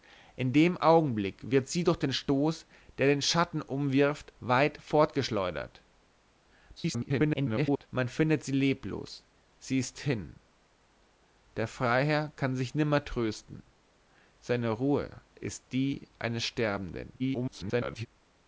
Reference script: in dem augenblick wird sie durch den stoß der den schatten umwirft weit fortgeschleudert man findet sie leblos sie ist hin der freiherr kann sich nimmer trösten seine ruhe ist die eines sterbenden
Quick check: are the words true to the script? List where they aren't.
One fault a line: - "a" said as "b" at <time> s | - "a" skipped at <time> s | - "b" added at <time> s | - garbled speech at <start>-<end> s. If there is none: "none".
- garbled speech at 6.8-7.9 s
- garbled speech at 17.2-18.1 s